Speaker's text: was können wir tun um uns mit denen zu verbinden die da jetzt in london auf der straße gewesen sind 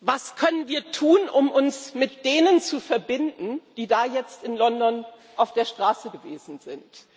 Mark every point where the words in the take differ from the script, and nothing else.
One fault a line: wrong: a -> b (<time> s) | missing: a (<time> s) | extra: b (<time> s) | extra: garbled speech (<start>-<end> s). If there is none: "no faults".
no faults